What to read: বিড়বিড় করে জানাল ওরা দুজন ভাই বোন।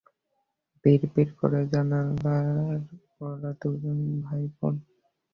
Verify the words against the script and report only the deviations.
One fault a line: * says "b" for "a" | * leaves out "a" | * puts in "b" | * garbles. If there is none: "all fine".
all fine